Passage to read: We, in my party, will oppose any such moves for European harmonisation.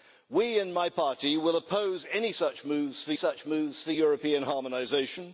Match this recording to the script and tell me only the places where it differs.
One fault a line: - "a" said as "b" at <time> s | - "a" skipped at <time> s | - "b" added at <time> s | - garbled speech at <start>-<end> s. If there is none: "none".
- "such moves for" added at 3.1 s